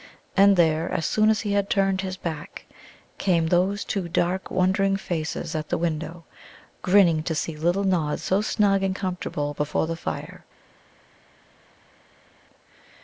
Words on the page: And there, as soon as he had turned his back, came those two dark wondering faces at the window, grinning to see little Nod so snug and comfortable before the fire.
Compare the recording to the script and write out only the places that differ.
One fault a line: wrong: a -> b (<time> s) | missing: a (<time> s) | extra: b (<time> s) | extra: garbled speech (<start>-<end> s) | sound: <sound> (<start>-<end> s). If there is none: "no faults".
no faults